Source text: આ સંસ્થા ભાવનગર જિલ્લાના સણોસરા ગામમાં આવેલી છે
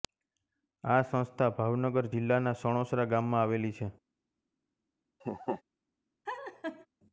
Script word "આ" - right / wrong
right